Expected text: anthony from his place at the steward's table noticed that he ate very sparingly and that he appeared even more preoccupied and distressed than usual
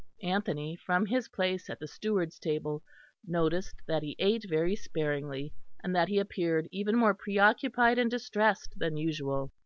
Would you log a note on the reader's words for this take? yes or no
no